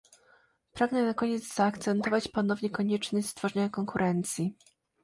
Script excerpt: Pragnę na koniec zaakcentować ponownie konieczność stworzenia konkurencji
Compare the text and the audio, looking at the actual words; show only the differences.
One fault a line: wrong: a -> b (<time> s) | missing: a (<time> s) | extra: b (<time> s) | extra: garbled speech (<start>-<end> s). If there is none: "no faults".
no faults